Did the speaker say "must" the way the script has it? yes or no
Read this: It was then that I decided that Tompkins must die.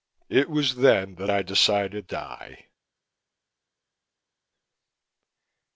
no